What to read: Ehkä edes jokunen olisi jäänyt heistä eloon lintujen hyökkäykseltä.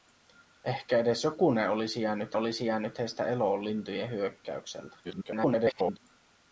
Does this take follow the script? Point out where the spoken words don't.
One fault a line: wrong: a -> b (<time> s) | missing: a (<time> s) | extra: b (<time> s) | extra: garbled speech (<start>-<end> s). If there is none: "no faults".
extra: olisi jäänyt (2.3 s)
extra: garbled speech (5.0-6.0 s)